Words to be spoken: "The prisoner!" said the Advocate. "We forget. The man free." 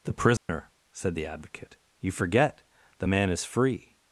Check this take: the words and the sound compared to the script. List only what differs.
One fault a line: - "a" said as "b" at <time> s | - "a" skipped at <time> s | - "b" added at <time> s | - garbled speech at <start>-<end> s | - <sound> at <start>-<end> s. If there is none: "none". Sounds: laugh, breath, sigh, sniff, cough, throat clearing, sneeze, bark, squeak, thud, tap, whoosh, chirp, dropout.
- dropout at 0.4-0.5 s
- "We" said as "You" at 2.0 s
- "is" added at 3.3 s